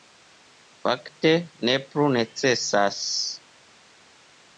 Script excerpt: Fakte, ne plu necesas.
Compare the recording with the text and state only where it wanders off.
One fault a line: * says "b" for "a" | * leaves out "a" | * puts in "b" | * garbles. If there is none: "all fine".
all fine